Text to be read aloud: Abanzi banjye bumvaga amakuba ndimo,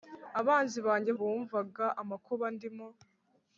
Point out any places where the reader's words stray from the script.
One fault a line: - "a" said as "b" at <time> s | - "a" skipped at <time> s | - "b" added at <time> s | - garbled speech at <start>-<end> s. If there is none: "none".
none